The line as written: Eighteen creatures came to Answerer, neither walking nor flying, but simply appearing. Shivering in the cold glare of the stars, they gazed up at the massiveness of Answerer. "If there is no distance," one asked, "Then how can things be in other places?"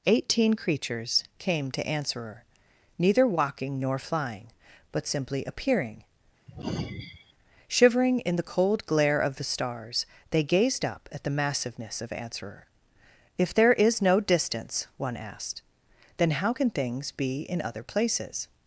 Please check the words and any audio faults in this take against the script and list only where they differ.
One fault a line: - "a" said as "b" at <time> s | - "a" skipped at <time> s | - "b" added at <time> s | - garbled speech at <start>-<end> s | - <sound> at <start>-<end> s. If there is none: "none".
- sigh at 6.5-7.3 s